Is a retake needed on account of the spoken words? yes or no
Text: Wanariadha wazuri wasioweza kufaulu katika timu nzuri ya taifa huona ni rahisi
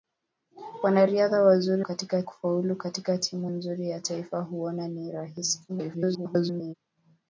yes